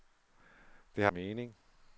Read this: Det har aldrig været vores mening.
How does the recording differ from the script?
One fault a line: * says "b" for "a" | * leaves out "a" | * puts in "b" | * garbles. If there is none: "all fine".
* leaves out "aldrig været vores"